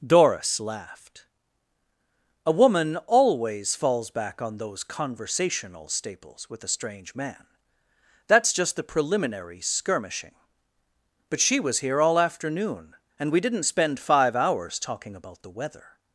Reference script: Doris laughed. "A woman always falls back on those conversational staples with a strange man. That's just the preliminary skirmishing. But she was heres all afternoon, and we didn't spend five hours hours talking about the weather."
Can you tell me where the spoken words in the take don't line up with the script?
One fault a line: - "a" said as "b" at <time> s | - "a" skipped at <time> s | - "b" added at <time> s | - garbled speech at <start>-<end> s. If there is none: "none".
- "heres" said as "here" at 11.8 s
- "hours" skipped at 14.8 s